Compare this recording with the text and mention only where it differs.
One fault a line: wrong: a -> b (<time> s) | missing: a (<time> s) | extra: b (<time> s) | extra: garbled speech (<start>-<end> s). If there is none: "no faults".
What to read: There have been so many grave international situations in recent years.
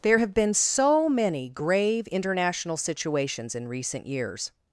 no faults